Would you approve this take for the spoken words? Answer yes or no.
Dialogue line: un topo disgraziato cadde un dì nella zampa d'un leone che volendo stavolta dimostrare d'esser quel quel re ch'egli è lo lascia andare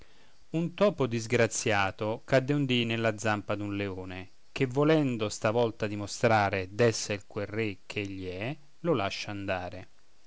no